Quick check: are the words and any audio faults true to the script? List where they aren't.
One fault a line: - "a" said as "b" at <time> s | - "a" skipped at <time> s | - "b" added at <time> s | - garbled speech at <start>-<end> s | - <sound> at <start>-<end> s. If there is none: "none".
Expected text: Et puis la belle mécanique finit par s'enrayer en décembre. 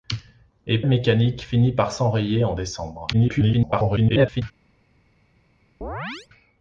- "puis la belle" skipped at 0.8 s
- garbled speech at 3.1-4.4 s
- chirp at 5.8-6.3 s